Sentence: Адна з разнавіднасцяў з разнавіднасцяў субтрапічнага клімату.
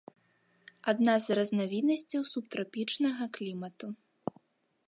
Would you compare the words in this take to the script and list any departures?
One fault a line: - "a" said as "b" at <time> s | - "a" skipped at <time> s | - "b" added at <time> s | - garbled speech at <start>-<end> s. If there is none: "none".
- "з разнавіднасцяў" skipped at 2.2 s